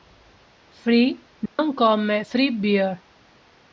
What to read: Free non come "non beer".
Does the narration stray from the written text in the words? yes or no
yes